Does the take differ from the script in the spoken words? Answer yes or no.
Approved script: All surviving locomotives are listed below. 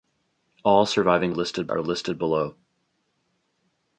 yes